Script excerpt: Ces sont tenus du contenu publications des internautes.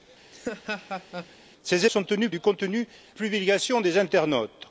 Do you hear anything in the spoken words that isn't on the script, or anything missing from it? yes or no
no